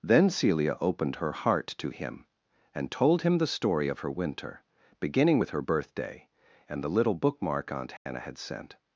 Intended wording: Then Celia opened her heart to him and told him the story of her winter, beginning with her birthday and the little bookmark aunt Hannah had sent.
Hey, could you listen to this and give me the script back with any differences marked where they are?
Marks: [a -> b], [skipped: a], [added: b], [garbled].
Then Celia opened her heart to him and told him the story of her winter, beginning with her birthday and the little bookmark aunt Hannah had sent.